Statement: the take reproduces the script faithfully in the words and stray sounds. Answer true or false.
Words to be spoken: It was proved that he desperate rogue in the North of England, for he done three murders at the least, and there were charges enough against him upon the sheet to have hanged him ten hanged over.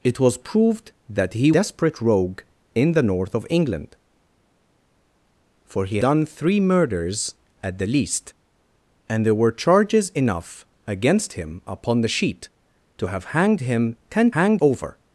true